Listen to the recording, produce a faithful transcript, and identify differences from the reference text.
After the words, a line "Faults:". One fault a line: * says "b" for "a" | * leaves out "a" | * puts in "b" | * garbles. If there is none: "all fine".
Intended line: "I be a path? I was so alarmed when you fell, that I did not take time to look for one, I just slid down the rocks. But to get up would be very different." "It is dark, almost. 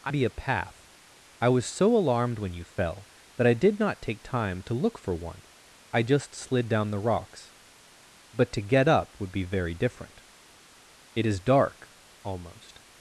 "I be a path? I was so alarmed when you fell, that I did not take time to look for one, I just slid down the rocks. But to get up would be very different." "It is dark, almost.
Faults:
all fine